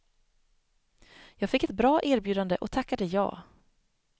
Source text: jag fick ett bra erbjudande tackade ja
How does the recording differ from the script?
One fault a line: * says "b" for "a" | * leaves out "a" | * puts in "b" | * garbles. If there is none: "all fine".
* puts in "och"